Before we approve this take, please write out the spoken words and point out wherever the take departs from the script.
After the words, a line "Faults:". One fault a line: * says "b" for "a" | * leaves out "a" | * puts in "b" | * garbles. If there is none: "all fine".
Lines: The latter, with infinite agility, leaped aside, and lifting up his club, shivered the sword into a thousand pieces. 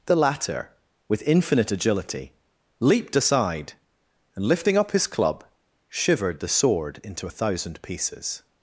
The latter, with infinite agility, leaped aside, and lifting up his club, shivered the sword into a thousand pieces.
Faults:
all fine